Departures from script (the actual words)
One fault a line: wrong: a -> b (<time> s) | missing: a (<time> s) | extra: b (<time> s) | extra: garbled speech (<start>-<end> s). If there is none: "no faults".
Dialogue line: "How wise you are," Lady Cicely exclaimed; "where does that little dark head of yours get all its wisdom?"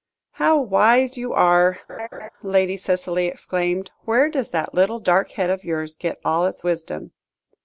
no faults